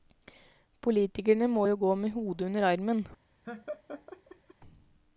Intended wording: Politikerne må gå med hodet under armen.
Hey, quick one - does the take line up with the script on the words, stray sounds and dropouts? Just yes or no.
no